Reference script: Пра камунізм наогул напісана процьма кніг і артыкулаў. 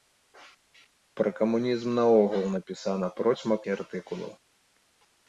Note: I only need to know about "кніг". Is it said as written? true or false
false